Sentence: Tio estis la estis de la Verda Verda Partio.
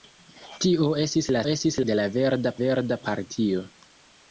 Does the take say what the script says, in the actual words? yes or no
yes